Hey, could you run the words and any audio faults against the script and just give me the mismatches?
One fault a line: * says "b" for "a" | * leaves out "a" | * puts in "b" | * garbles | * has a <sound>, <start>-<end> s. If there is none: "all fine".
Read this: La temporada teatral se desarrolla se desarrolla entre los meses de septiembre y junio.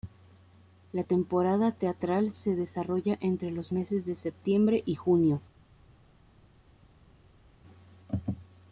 * leaves out "se desarrolla"